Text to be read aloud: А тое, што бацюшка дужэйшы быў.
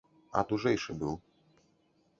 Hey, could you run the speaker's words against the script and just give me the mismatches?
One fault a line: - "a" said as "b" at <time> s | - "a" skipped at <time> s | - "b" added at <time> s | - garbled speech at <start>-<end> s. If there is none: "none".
- "тое што бацюшка" skipped at 0.4 s